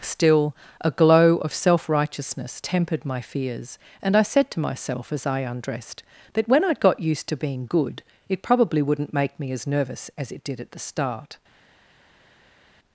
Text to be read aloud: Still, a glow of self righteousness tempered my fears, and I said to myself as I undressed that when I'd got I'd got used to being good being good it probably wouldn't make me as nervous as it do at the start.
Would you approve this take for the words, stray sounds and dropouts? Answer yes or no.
no